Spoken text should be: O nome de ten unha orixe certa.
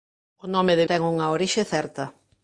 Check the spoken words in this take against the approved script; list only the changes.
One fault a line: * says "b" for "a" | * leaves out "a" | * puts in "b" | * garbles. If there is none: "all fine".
all fine